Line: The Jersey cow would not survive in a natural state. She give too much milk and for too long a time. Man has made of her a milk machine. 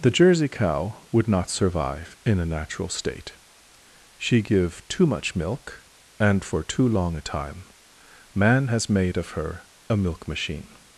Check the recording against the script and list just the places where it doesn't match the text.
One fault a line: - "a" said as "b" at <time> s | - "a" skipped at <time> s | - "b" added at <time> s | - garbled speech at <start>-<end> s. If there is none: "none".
none